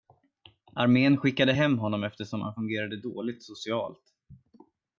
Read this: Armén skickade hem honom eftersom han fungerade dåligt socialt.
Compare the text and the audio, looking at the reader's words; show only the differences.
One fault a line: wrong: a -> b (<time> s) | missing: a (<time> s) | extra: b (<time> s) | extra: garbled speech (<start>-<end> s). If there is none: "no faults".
no faults